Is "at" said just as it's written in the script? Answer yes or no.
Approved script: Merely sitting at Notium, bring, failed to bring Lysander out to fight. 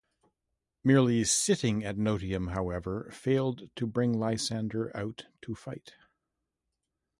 yes